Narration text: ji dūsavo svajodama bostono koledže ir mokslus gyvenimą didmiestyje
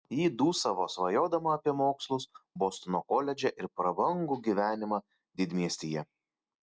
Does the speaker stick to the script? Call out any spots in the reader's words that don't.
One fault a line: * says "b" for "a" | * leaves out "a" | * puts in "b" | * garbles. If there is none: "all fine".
* puts in "apie mokslus"
* says "prabangų" for "mokslus"